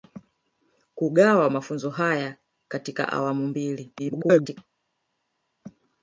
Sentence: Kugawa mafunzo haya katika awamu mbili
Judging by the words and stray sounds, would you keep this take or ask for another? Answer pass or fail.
fail